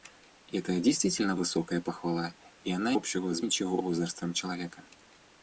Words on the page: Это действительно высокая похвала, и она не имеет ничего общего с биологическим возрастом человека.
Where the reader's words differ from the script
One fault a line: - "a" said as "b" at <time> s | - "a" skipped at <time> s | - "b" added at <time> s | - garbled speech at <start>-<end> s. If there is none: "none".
- "не имеет ничего" skipped at 3.0 s
- "биологическим" said as "ничего" at 3.4 s